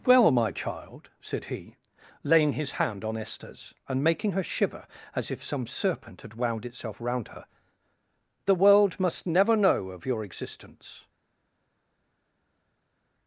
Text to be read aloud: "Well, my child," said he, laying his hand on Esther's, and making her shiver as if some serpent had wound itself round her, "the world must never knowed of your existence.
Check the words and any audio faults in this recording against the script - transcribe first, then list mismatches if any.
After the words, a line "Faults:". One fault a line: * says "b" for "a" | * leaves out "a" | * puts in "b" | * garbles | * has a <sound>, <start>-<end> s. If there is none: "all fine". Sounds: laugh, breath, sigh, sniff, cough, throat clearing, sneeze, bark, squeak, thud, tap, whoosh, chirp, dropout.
"Well, my child," said he, laying his hand on Esther's, and making her shiver as if some serpent had wound itself round her, "the world must never know of your existence.
Faults:
* says "know" for "knowed"